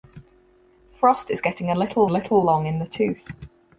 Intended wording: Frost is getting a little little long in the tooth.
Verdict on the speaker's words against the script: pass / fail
pass